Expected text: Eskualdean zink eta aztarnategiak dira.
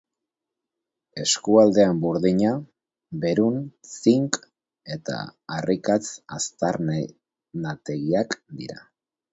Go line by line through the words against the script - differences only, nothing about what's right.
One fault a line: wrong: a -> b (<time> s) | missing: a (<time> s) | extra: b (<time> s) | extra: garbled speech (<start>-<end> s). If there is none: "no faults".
extra: burdina berun (2.0 s)
extra: harrikatz (5.6 s)